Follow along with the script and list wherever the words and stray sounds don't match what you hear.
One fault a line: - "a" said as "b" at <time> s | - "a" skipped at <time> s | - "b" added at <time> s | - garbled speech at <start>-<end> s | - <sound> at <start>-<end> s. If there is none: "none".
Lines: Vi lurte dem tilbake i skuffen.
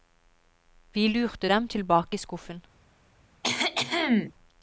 - cough at 3.4-4.3 s